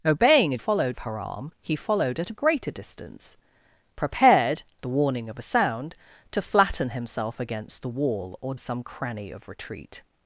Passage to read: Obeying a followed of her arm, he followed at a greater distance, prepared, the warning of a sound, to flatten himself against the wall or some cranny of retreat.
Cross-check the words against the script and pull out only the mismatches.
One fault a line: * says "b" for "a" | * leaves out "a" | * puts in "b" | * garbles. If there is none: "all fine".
all fine